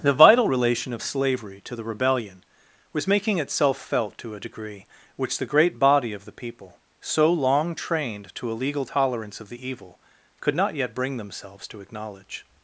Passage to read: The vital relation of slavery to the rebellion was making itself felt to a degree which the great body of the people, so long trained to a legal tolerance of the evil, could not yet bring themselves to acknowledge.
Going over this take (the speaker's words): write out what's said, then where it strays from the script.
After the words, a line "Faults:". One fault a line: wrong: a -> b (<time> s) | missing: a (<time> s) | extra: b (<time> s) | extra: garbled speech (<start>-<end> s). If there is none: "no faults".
The vital relation of slavery to the rebellion was making itself felt to a degree which the great body of the people, so long trained to a legal tolerance of the evil, could not yet bring themselves to acknowledge.
Faults:
no faults